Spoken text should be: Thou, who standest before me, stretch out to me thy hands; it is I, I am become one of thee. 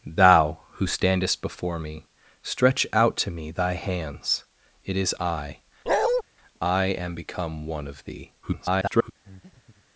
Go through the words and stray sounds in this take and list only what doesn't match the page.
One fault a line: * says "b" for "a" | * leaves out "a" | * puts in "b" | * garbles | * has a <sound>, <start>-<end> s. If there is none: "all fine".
* has a bark, 5.9-6.2 s
* garbles
* has a breath, 9.2-9.9 s